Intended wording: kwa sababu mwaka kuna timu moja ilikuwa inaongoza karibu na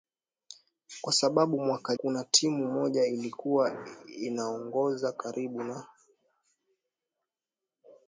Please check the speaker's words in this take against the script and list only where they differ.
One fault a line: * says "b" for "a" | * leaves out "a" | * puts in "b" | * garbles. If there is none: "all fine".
all fine